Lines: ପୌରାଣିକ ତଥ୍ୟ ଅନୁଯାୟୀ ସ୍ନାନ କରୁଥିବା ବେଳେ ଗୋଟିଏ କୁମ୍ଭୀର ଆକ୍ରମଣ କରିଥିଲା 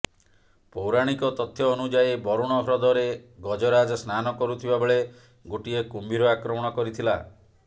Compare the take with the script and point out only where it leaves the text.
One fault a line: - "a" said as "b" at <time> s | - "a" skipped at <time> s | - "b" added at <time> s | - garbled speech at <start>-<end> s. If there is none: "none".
- "ବରୁଣ ହ୍ରଦରେ ଗଜରାଜ" added at 2.2 s